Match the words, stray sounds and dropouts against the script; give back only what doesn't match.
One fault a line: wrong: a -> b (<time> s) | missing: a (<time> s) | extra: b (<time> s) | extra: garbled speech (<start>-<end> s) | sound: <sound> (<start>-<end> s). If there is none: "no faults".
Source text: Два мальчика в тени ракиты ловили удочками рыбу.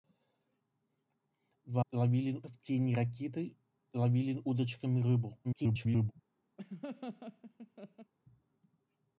wrong: мальчика -> ловили (1.9 s)
extra: garbled speech (5.4-6.1 s)
sound: laugh (6.6-8.1 s)